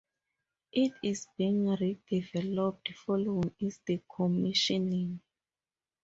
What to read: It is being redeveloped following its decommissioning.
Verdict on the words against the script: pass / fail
pass